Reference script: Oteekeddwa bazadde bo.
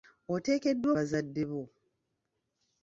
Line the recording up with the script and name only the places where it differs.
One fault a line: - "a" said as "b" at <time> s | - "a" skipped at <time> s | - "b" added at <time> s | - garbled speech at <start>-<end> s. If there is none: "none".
none